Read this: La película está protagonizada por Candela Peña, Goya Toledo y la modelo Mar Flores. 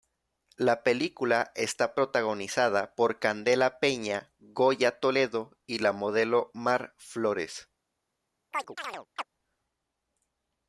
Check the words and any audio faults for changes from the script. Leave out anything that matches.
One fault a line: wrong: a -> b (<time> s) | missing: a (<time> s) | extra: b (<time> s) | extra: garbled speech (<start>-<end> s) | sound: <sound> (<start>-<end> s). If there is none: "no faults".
sound: chirp (8.5-9.3 s)